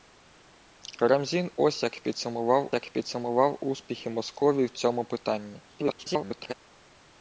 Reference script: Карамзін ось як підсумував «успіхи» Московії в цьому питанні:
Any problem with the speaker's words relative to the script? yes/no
yes